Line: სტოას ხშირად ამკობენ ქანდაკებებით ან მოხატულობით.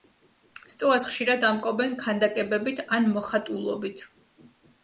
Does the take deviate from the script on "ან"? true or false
false